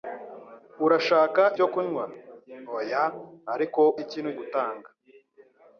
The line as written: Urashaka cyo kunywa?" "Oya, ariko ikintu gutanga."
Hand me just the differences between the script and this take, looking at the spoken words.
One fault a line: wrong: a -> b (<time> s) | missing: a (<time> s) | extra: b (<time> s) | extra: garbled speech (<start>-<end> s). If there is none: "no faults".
no faults